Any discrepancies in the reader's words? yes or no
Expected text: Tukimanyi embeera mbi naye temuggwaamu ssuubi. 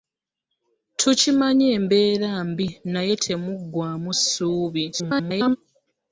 yes